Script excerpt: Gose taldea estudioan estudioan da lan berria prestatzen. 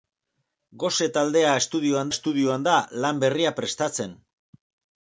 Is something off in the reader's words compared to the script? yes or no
no